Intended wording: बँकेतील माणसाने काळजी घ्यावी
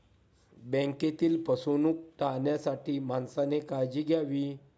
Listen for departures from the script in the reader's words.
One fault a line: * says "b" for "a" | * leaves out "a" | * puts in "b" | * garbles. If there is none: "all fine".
* puts in "फसवणूक टाळण्यासाठी"